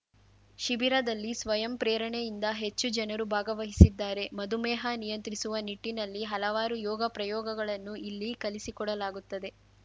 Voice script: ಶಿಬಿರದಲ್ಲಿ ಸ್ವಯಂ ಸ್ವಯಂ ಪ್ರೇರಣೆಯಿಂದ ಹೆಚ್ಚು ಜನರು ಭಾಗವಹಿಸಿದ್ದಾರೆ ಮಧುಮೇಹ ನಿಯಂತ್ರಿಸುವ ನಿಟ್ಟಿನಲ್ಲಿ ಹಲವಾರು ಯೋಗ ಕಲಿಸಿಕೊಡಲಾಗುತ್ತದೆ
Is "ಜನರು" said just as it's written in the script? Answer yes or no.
yes